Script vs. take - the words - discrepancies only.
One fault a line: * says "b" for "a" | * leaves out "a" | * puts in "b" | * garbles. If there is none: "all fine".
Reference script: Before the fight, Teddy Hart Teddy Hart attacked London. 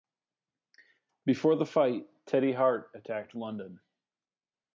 * leaves out "Teddy Hart"